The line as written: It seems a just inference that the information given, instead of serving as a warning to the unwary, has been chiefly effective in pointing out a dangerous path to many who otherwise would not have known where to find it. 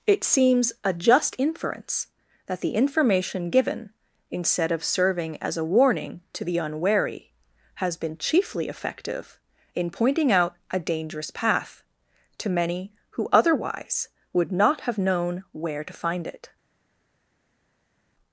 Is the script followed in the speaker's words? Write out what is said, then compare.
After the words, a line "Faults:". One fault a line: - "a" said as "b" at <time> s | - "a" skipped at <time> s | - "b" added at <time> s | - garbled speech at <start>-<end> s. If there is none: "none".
It seems a just inference that the information given, instead of serving as a warning to the unwary, has been chiefly effective in pointing out a dangerous path to many who otherwise would not have known where to find it.
Faults:
none